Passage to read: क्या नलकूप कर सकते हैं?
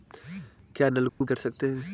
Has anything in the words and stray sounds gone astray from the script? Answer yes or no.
yes